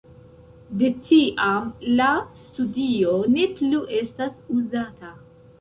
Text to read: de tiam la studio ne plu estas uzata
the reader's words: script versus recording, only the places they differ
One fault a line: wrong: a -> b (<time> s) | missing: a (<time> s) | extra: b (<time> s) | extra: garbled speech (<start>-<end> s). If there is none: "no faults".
no faults